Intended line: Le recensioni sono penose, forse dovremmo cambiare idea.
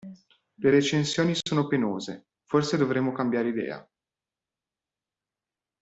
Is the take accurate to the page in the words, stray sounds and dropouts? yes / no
yes